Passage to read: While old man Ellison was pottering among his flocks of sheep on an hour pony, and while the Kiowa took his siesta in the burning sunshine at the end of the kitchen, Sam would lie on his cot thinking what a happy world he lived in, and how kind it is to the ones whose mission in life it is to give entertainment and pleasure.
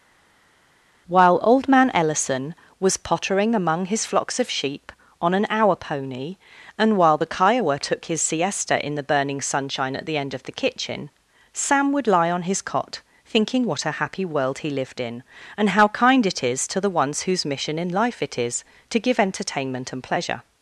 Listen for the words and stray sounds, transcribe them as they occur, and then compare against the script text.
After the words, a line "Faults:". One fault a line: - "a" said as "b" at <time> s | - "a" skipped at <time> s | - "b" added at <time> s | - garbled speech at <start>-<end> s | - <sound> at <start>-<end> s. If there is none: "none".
While old man Ellison was pottering among his flocks of sheep on an hour pony, and while the Kiowa took his siesta in the burning sunshine at the end of the kitchen, Sam would lie on his cot thinking what a happy world he lived in, and how kind it is to the ones whose mission in life it is to give entertainment and pleasure.
Faults:
none